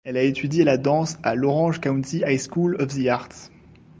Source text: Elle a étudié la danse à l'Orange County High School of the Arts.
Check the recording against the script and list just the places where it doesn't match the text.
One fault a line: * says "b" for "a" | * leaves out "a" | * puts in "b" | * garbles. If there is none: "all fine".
all fine